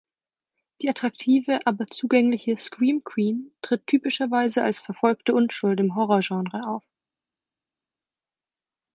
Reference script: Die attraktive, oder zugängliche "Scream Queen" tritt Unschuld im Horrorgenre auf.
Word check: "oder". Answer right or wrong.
wrong